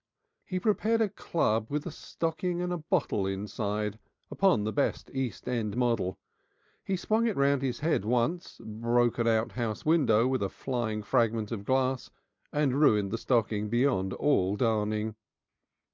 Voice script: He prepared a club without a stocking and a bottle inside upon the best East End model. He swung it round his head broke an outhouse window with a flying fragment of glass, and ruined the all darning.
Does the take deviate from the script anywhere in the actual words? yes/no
yes